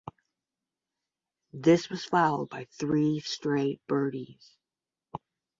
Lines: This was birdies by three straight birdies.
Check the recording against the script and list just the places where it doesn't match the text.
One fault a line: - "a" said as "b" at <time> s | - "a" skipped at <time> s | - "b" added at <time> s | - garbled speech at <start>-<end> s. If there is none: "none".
- "birdies" said as "followed" at 2.0 s